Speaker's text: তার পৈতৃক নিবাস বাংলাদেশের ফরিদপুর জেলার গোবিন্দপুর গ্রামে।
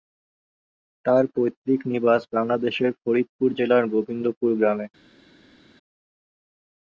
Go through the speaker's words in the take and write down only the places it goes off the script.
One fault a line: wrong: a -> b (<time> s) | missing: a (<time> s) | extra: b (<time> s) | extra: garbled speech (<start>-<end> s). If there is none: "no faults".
no faults